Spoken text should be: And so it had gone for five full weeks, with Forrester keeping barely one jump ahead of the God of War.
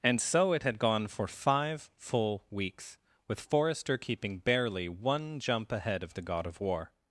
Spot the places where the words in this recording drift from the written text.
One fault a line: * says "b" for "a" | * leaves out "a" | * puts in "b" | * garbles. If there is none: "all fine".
all fine